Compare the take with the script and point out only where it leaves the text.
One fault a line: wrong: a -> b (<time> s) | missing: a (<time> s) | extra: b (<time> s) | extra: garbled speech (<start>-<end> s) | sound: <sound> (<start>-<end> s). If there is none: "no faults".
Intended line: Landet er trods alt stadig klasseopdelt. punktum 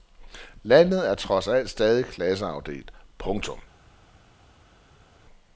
no faults